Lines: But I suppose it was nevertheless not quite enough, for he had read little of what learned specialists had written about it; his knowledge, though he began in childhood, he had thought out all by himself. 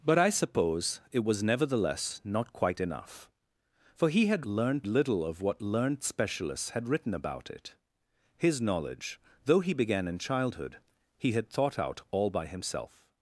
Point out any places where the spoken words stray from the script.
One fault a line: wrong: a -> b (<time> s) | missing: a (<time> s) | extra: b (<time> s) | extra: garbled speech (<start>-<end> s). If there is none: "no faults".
wrong: read -> learned (4.5 s)